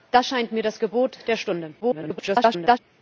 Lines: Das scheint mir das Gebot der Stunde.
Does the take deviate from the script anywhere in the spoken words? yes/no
yes